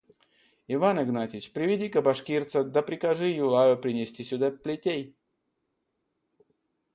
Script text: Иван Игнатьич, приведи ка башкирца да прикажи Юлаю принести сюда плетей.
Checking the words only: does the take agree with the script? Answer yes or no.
yes